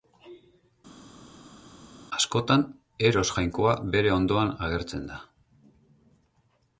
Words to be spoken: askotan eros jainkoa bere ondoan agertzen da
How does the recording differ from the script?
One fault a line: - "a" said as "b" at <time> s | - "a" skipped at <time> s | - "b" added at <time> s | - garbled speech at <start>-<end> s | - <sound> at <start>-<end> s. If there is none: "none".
none